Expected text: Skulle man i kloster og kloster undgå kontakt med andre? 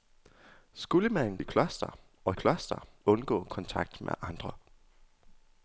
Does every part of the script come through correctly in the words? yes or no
yes